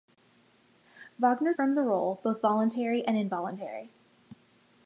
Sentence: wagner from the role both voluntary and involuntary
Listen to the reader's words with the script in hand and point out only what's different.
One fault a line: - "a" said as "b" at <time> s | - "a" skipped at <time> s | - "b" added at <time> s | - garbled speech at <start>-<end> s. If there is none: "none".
none